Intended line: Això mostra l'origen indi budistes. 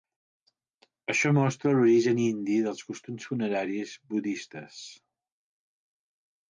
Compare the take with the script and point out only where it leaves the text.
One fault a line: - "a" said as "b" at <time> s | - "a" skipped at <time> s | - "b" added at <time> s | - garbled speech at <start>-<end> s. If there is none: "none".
- "dels costums funeraris" added at 2.7 s